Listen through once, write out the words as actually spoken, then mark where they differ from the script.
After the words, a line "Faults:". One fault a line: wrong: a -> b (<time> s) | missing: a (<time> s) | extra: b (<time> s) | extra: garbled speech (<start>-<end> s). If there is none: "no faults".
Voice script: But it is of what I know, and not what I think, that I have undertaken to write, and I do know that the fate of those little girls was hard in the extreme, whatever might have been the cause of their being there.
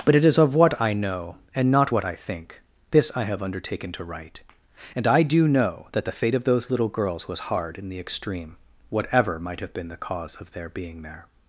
But it is of what I know, and not what I think, this I have undertaken to write, and I do know that the fate of those little girls was hard in the extreme, whatever might have been the cause of their being there.
Faults:
wrong: that -> this (2.9 s)